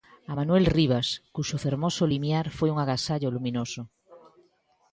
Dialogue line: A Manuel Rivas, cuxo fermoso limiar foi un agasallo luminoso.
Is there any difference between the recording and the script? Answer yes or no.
no